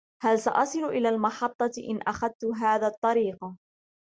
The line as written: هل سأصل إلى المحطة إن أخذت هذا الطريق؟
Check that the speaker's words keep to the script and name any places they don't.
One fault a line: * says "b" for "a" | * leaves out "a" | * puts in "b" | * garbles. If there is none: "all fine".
all fine